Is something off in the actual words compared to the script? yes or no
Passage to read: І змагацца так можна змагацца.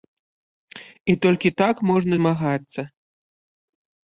yes